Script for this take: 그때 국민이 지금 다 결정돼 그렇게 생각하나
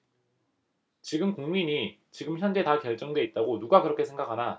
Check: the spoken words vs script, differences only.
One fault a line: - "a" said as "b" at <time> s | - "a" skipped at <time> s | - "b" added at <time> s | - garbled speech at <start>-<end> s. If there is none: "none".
- "그때" said as "지금" at 1.0 s
- "현재" added at 2.4 s
- "있다고 누가" added at 3.2 s